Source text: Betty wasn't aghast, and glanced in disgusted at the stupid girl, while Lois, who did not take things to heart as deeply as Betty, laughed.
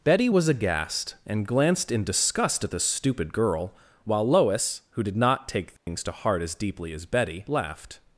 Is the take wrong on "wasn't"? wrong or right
wrong